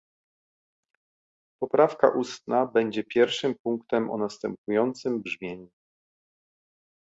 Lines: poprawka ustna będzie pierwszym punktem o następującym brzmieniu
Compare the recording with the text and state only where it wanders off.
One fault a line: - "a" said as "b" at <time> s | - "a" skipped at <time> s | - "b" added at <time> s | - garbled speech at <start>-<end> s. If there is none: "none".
none